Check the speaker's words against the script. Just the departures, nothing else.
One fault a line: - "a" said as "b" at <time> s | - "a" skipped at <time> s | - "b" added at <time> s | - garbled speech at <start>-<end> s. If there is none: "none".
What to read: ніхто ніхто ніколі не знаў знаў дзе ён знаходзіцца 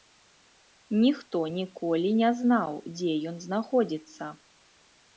- "ніхто" skipped at 1.4 s
- "знаў" skipped at 2.8 s